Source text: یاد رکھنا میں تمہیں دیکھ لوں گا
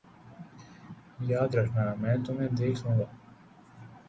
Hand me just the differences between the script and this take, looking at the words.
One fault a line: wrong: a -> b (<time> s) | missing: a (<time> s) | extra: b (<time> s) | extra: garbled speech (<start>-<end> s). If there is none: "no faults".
no faults